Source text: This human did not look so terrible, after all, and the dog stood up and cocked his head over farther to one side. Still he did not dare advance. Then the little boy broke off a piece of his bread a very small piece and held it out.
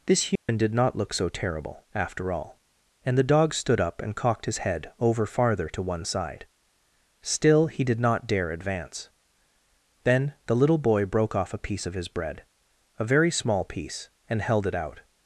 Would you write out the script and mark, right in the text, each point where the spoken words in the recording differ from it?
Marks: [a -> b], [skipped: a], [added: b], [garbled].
This human did not look so terrible, after all, and the dog stood up and cocked his head over farther to one side. Still he did not dare advance. Then the little boy broke off a piece of his bread a very small piece and held it out.